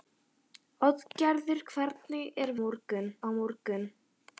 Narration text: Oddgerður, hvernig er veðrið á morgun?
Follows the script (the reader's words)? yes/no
no